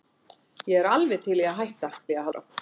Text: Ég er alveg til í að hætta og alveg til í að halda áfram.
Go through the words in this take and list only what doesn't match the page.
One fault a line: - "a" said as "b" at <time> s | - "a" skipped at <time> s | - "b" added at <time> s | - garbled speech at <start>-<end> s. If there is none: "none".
- "og alveg til" skipped at 1.9 s
- "halda" skipped at 2.3 s